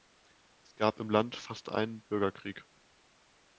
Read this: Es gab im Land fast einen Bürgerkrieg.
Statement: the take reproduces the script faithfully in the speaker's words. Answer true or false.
true